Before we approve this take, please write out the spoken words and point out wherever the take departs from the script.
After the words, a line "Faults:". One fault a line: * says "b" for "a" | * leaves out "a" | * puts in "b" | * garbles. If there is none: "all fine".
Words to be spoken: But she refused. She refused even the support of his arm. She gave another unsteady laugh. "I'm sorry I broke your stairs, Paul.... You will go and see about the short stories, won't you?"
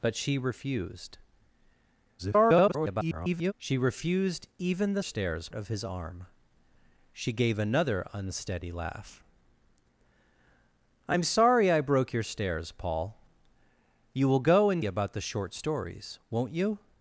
But she refused. [garbled] She refused even the stairs of his arm. She gave another unsteady laugh. "I'm sorry I broke your stairs, Paul.... You will go and about the short stories, won't you?"
Faults:
* garbles
* says "stairs" for "support"
* leaves out "see"